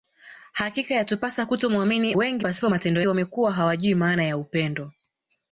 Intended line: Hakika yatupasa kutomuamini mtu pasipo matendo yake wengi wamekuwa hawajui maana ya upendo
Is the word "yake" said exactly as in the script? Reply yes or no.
no